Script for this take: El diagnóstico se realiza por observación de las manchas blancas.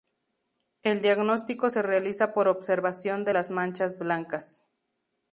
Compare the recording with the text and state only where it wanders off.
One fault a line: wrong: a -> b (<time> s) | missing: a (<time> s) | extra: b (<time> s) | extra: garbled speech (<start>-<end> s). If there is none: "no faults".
no faults